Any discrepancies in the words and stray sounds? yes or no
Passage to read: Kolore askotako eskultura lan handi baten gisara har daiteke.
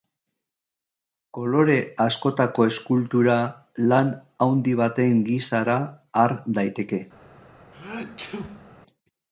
yes